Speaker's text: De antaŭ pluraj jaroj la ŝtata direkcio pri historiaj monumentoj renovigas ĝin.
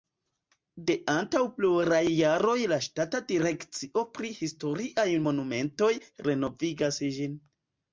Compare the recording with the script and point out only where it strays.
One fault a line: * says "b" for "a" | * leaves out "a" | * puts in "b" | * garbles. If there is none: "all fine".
all fine